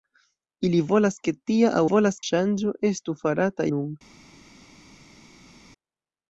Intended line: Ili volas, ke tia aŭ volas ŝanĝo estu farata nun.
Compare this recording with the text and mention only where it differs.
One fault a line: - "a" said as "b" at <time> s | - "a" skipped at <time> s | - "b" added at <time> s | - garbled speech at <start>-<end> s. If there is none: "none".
none